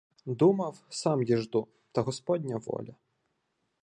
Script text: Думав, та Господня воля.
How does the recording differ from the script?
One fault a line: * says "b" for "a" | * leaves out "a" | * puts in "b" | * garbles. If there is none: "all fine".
* puts in "сам діжду"